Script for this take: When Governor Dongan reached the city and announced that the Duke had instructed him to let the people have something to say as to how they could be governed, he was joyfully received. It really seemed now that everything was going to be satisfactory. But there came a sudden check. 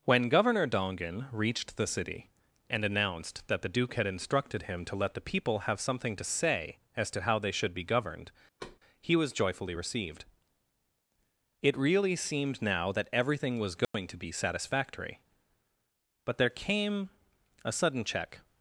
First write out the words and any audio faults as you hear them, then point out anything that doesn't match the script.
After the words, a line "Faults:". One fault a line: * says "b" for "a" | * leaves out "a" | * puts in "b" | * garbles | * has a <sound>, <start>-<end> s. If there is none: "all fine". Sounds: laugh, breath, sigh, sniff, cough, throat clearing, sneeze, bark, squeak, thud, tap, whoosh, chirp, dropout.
When Governor Dongan reached the city and announced that the Duke had instructed him to let the people have something to say as to how they should be governed, he was joyfully received. It really seemed now that everything was going to be satisfactory. But there came a sudden check.
Faults:
* says "should" for "could"
* has a thud, 8.6-8.8 s
* has a dropout, 13.8-13.9 s